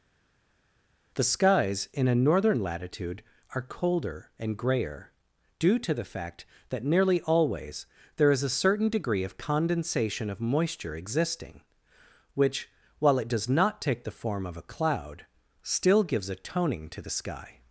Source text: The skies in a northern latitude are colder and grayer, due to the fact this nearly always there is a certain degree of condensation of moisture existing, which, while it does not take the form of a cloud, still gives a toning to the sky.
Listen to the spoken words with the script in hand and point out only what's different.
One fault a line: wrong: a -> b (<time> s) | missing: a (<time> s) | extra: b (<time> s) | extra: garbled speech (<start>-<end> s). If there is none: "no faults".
wrong: this -> that (6.7 s)